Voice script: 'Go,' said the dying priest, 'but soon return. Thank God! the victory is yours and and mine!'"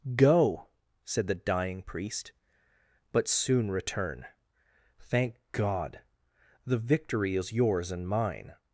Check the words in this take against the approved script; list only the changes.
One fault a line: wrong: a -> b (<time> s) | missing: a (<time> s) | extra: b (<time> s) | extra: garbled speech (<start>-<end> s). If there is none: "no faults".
missing: and (8.1 s)